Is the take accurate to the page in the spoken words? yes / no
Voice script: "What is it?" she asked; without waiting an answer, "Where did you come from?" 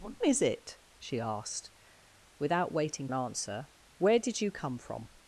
yes